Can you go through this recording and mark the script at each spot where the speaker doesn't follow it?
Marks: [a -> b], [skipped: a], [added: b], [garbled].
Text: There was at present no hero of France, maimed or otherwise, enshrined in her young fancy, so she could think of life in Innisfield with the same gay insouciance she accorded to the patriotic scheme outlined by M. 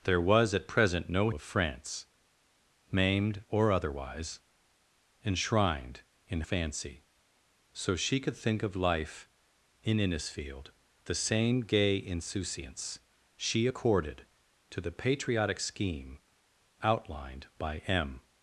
There was at present no [skipped: hero] of France, maimed or otherwise, enshrined in [skipped: her young] fancy, so she could think of life in Innisfield [skipped: with] the same gay insouciance she accorded to the patriotic scheme outlined by M.